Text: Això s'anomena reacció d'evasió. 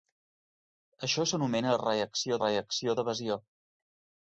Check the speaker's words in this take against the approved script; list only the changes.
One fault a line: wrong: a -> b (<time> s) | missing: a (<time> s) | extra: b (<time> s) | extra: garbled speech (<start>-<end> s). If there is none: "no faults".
extra: reacció (2.4 s)